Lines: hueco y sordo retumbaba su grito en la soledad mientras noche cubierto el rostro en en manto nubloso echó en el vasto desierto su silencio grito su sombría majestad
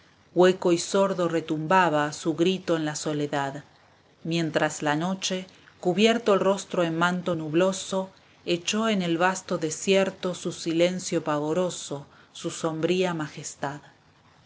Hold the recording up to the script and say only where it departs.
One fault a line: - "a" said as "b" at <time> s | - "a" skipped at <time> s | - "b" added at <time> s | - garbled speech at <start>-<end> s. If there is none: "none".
- "la" added at 4.8 s
- "en" skipped at 7.0 s
- "grito" said as "pavoroso" at 11.2 s